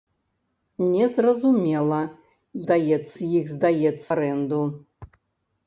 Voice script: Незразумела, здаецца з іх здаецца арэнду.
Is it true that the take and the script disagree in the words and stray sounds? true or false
false